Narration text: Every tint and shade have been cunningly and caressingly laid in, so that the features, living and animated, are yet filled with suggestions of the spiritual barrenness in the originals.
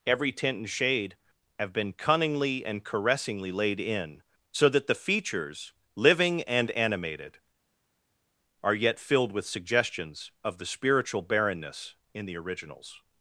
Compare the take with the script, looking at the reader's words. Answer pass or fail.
pass